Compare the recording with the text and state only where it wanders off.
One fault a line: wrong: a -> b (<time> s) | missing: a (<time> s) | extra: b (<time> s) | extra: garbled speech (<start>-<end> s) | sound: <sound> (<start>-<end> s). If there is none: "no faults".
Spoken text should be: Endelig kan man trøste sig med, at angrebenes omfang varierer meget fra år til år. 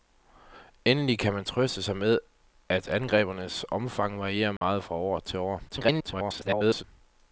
sound: dropout (4.6-4.6 s)
extra: garbled speech (5.7-6.8 s)